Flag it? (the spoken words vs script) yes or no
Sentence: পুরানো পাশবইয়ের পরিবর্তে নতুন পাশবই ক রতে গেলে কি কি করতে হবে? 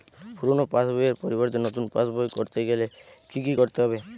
no